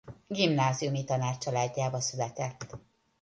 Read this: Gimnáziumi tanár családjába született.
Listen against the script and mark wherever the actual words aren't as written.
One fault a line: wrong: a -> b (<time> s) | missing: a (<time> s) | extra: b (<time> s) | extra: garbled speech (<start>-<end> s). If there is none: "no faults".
no faults